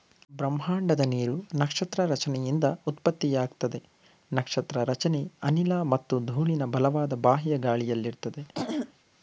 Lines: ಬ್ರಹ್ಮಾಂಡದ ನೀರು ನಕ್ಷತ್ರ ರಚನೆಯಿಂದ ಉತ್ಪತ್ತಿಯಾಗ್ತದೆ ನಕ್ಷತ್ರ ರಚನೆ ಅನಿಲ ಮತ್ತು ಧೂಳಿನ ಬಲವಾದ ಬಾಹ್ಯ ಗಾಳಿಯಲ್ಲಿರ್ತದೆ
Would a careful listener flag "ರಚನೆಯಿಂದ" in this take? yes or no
no